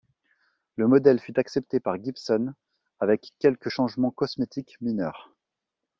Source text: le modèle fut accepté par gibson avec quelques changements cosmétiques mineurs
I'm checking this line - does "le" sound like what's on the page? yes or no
yes